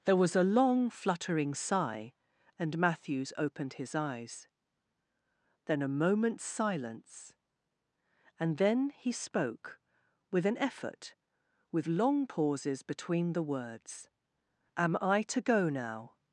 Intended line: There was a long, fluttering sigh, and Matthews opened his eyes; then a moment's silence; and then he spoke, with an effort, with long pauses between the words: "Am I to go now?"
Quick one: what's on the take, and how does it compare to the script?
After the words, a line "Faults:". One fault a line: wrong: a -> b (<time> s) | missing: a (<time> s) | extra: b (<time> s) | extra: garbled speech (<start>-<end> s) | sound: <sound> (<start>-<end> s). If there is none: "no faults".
There was a long, fluttering sigh, and Matthews opened his eyes; then a moment's silence; and then he spoke, with an effort, with long pauses between the words: "Am I to go now?"
Faults:
no faults